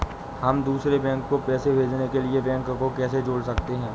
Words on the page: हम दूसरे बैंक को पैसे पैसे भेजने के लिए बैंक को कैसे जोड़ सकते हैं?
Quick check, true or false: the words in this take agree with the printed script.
false